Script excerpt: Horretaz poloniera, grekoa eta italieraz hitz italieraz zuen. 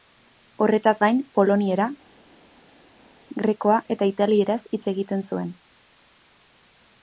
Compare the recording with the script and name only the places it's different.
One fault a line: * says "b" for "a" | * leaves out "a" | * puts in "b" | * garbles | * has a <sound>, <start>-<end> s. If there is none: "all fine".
* puts in "gain"
* says "egiten" for "italieraz"